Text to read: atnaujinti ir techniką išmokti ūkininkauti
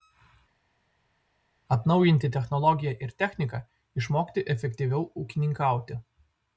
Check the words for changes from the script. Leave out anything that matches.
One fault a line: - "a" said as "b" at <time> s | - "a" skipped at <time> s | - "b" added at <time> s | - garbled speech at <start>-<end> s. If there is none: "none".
- "technologiją" added at 2.4 s
- "efektyviau" added at 4.5 s